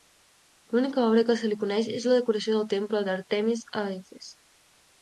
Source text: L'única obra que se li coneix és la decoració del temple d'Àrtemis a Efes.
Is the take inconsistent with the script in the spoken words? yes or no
no